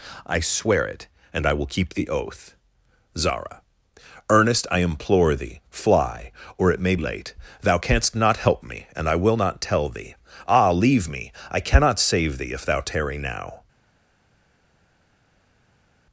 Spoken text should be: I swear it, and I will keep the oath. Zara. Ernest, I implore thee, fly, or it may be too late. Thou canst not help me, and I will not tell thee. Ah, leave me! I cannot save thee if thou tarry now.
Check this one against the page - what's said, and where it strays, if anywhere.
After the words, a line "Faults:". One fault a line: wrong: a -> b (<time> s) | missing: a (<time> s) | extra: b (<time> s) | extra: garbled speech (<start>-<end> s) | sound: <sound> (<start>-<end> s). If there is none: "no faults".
I swear it, and I will keep the oath. Zara. Ernest, I implore thee, fly, or it may late. Thou canst not help me, and I will not tell thee. Ah, leave me! I cannot save thee if thou tarry now.
Faults:
missing: be too (7.0 s)